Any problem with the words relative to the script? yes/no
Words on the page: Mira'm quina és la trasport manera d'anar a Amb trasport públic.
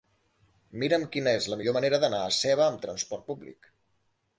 yes